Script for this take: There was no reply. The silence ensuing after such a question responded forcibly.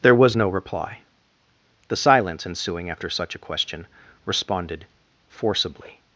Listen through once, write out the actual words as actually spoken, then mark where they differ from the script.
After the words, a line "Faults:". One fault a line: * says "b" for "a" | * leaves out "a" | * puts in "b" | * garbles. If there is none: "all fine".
There was no reply. The silence ensuing after such a question responded forcibly.
Faults:
all fine